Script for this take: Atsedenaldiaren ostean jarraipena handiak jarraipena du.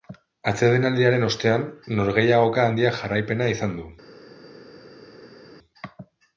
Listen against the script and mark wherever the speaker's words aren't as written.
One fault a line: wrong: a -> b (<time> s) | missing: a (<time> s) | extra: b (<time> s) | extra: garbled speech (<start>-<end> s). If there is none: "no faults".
wrong: jarraipena -> norgehiagoka (2.0 s)
extra: izan (3.6 s)